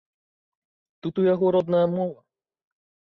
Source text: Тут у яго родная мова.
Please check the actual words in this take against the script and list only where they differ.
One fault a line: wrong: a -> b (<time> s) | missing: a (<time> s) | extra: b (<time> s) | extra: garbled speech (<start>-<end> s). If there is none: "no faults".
no faults